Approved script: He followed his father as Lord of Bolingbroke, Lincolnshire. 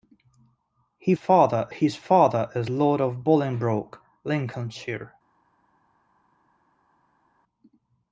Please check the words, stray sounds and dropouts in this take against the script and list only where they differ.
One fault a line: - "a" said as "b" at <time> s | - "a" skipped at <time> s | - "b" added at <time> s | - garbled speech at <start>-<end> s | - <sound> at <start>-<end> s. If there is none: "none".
- "followed" said as "father" at 1.1 s